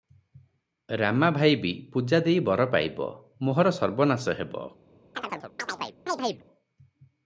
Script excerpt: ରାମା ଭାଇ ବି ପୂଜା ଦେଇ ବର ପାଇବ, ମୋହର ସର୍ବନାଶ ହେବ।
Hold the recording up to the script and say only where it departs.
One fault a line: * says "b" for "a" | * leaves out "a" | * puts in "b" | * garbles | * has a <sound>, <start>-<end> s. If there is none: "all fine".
* has a chirp, 5.1-6.5 s